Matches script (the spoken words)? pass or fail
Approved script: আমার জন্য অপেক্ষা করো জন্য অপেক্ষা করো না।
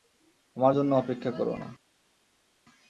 fail